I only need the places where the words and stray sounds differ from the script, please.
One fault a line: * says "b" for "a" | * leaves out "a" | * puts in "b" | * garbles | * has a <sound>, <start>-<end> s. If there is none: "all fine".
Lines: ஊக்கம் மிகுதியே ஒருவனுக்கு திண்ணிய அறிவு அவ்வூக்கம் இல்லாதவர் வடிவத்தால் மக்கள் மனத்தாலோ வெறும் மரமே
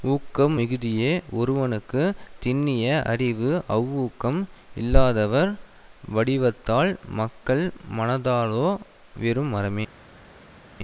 all fine